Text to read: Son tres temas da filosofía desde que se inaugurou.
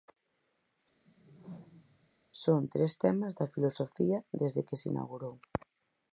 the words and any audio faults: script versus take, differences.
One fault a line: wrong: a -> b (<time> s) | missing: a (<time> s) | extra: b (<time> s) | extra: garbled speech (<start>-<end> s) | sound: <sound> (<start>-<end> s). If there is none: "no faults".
sound: whoosh (1.0-2.1 s)